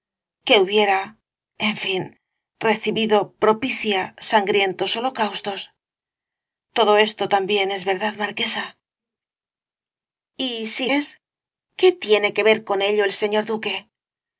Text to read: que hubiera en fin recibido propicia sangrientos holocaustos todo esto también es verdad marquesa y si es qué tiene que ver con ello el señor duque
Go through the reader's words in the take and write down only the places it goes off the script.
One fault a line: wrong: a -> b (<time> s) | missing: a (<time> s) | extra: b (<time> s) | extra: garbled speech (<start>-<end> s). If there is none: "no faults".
no faults